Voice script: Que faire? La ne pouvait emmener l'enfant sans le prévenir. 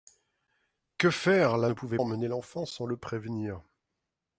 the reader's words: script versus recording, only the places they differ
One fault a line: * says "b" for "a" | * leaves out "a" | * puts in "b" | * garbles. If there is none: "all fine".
all fine